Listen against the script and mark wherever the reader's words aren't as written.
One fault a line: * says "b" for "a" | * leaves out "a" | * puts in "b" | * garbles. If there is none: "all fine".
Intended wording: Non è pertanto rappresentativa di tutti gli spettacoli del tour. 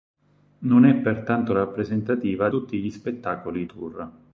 * leaves out "di"
* leaves out "del"